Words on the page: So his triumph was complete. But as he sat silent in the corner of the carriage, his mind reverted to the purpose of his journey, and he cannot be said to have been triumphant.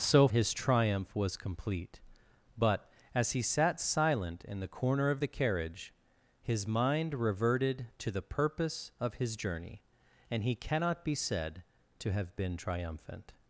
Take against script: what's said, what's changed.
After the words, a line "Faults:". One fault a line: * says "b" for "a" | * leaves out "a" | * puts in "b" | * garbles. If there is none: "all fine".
So his triumph was complete. But as he sat silent in the corner of the carriage, his mind reverted to the purpose of his journey, and he cannot be said to have been triumphant.
Faults:
all fine